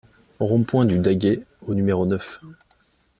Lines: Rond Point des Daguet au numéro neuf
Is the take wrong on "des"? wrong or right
wrong